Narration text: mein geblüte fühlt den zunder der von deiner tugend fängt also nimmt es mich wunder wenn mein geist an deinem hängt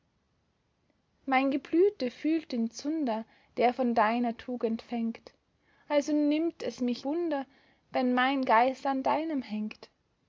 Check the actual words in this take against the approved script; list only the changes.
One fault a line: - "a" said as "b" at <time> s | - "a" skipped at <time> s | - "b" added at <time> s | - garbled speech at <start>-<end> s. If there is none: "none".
none